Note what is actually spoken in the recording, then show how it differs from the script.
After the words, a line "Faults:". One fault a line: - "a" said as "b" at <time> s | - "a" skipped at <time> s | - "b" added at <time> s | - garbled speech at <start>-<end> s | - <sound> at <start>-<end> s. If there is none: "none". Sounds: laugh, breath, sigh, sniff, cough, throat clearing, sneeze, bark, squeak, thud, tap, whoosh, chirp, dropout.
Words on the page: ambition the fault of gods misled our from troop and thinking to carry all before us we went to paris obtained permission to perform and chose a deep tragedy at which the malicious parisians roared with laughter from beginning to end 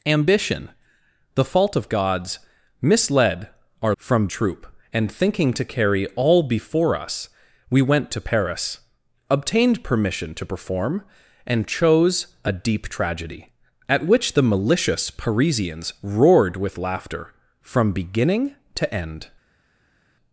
ambition the fault of gods misled our from troop and thinking to carry all before us we went to paris obtained permission to perform and chose a deep tragedy at which the malicious parisians roared with laughter from beginning to end
Faults:
none